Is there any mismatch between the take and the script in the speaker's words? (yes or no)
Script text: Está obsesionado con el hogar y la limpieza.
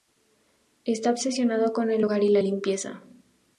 no